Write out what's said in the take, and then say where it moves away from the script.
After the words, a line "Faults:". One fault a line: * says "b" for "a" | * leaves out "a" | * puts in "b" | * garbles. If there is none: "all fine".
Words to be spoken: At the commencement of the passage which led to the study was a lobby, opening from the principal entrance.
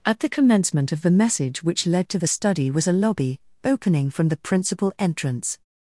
At the commencement of the message which led to the study was a lobby, opening from the principal entrance.
Faults:
* says "message" for "passage"